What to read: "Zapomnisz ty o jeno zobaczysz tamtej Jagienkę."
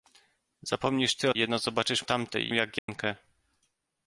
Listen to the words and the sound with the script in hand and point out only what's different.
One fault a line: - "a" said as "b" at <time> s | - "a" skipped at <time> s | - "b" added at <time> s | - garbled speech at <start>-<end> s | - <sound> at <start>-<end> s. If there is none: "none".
- dropout at 2.8-2.9 s